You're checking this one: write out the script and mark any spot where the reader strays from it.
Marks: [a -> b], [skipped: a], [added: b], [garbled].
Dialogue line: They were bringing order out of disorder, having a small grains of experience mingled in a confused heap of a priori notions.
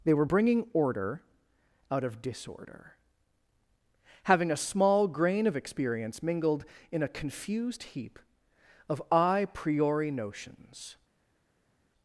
They were bringing order out of disorder, having a small [grains -> grain] of experience mingled in a confused heap of a priori notions.